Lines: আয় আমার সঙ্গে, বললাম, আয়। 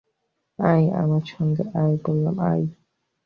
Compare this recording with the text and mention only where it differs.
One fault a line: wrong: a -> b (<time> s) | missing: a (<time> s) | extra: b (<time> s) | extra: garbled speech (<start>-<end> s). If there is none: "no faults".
extra: আয় (1.8 s)